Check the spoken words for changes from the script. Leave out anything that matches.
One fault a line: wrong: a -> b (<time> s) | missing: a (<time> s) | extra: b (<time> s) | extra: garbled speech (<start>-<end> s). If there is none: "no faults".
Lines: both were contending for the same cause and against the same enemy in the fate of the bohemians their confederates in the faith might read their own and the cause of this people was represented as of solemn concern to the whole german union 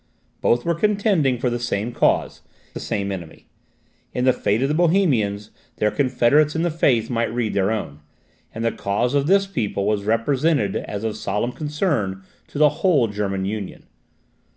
missing: and against (2.4 s)